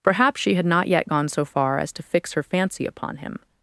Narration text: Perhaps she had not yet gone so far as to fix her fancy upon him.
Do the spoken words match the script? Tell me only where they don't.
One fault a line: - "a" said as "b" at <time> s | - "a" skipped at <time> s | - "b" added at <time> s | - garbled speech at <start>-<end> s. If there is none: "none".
none